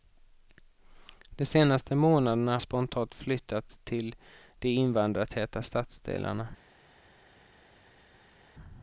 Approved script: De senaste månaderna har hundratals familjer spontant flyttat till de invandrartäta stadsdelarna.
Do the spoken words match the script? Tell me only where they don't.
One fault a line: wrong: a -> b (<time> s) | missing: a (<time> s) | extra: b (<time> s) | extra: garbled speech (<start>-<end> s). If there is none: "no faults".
missing: har hundratals familjer (2.6 s)